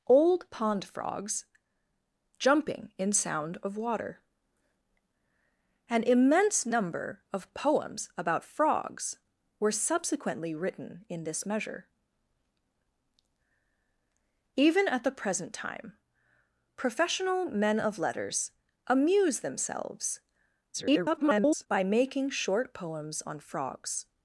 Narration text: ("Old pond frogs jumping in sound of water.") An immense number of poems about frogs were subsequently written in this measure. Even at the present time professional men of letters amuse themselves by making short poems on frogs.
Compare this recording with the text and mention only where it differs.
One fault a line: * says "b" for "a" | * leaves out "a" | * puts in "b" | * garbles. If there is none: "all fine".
* garbles